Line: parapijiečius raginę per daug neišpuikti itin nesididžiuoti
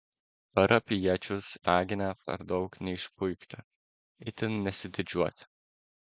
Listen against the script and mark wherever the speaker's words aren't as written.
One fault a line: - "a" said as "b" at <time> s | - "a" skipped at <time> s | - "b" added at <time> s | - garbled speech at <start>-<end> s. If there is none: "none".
none